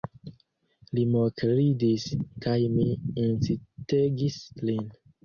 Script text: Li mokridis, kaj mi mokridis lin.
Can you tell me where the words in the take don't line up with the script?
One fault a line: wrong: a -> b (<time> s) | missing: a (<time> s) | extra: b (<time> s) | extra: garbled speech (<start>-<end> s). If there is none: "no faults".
wrong: mokridis -> incitegis (3.2 s)